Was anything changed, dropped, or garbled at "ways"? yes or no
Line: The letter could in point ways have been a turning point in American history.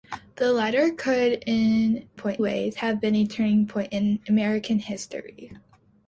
no